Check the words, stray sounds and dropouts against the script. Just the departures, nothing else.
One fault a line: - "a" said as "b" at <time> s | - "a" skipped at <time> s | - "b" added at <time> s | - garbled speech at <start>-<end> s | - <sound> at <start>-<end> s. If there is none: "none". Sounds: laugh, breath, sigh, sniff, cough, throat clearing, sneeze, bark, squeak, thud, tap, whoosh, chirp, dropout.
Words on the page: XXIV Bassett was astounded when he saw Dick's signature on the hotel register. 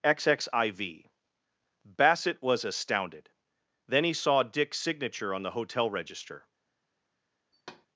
- "when" said as "then" at 3.9 s
- thud at 7.5-7.9 s